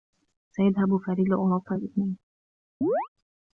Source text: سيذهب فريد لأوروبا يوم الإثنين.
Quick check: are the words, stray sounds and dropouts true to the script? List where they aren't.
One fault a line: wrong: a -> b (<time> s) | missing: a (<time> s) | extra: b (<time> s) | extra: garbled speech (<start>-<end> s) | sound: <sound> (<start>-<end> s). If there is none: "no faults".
missing: يوم (1.8 s)
sound: chirp (2.8-3.1 s)